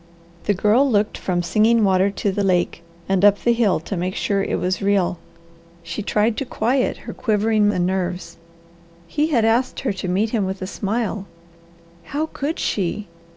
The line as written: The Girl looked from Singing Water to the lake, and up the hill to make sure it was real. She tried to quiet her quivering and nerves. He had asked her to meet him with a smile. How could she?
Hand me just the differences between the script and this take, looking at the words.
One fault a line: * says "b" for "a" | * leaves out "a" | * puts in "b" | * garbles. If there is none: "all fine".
all fine